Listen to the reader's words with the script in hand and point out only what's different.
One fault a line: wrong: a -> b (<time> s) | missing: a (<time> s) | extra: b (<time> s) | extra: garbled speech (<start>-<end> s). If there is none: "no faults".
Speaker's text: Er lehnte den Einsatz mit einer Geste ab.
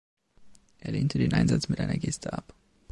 no faults